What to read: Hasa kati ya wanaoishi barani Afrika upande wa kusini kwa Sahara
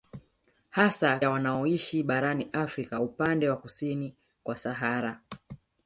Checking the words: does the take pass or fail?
fail